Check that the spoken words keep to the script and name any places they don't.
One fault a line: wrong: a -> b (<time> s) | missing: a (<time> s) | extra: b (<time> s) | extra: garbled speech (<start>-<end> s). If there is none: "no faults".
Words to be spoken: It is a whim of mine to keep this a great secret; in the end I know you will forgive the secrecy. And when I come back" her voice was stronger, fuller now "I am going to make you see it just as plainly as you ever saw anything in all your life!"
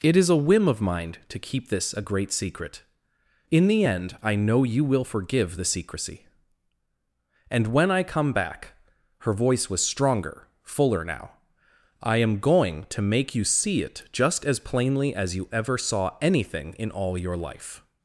no faults